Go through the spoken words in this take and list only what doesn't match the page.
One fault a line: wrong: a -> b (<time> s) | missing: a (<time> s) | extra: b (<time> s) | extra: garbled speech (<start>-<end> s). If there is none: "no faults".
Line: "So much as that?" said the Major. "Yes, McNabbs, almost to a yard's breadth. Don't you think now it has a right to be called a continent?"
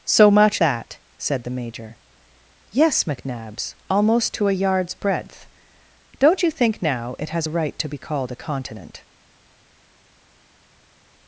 missing: as (0.6 s)